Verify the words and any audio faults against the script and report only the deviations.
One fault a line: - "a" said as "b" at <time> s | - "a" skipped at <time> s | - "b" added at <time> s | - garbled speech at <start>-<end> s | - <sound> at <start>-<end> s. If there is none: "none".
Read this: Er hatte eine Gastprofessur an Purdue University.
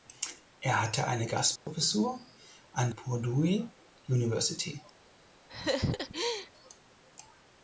- dropout at 1.6-1.7 s
- laugh at 5.5-6.5 s